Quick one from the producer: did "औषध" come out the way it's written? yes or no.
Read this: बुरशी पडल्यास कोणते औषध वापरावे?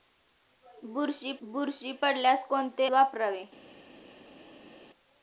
no